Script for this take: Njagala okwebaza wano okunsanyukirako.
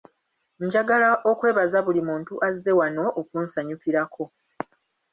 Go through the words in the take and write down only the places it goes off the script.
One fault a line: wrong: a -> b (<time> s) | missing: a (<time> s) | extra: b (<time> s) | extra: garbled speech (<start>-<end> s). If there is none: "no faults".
extra: buli muntu azze (1.9 s)